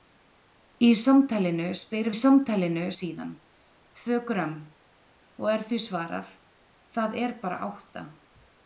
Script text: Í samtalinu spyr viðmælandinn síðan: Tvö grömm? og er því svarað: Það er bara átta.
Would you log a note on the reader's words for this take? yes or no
yes